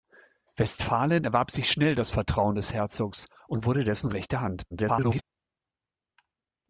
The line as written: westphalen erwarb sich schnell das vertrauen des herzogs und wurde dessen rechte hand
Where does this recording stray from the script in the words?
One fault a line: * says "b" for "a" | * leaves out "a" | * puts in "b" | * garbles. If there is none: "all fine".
* garbles